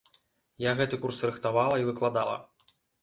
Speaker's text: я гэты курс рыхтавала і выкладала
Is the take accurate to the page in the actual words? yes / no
yes